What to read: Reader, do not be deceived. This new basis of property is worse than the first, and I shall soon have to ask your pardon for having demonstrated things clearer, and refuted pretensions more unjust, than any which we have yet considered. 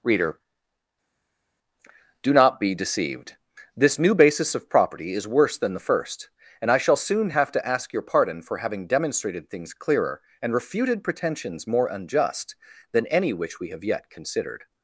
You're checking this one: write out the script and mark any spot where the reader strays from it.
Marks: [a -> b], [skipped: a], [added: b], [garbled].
Reader, do not be deceived. This new basis of property is worse than the first, and I shall soon have to ask your pardon for having demonstrated things clearer, and refuted pretensions more unjust, than any which we have yet considered.